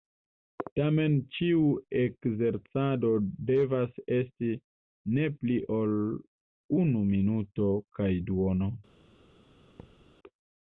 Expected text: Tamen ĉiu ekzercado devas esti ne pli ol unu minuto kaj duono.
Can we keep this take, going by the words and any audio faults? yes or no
no